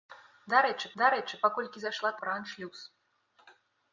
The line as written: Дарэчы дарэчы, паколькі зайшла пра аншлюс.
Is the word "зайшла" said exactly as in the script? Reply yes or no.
yes